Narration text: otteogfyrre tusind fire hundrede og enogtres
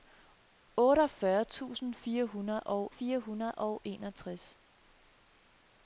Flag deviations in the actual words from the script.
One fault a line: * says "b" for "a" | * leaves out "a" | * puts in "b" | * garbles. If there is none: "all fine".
* puts in "fire hundrede og"